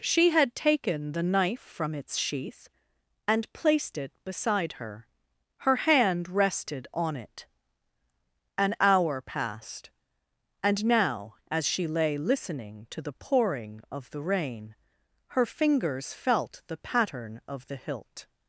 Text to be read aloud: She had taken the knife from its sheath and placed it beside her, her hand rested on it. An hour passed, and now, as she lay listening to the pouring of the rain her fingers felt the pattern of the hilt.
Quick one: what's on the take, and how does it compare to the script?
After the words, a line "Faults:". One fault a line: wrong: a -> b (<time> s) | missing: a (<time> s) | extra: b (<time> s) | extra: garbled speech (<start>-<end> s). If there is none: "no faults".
She had taken the knife from its sheath and placed it beside her, her hand rested on it. An hour passed, and now, as she lay listening to the pouring of the rain her fingers felt the pattern of the hilt.
Faults:
no faults